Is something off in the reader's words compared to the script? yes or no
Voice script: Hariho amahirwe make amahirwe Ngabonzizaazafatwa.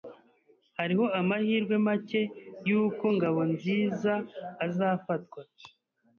yes